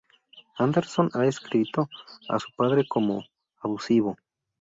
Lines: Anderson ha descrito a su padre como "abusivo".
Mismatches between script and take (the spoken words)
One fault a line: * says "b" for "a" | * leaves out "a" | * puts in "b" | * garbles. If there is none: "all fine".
all fine